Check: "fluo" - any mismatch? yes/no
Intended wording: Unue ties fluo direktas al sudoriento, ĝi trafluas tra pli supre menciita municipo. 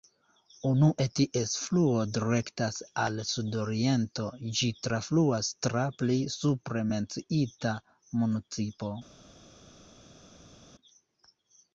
no